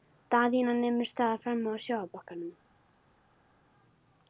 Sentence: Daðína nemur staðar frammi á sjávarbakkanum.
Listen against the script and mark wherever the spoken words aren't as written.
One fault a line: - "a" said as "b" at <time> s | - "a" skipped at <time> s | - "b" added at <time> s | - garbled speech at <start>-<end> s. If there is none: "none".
none